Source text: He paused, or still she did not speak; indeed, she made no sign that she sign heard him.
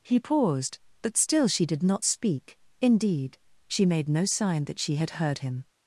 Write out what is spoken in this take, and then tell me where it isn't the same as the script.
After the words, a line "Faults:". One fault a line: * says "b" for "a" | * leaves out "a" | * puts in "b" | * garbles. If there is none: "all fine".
He paused, but still she did not speak; indeed, she made no sign that she had heard him.
Faults:
* says "but" for "or"
* says "had" for "sign"